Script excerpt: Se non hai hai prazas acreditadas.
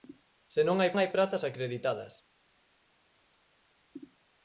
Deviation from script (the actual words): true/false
false